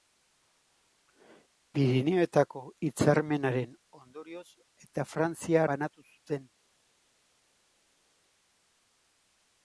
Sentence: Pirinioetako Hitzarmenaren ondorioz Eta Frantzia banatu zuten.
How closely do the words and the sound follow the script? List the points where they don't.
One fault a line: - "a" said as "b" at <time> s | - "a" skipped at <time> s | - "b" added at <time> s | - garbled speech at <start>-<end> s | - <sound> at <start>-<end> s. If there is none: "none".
none